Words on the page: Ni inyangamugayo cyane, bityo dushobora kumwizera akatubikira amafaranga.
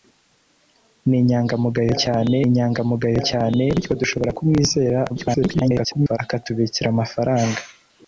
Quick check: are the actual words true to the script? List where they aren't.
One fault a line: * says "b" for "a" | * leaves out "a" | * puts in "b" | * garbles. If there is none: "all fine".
* puts in "inyangamugayo cyane"
* garbles